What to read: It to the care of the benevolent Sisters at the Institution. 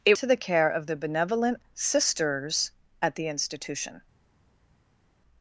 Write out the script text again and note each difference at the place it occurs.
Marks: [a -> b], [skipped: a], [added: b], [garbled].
It to the care of the benevolent Sisters at the Institution.